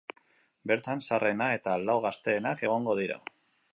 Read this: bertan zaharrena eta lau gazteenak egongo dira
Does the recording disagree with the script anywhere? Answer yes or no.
no